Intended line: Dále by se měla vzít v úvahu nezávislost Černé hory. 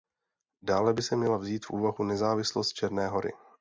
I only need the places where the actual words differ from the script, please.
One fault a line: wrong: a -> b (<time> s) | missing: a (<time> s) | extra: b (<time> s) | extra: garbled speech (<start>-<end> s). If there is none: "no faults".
no faults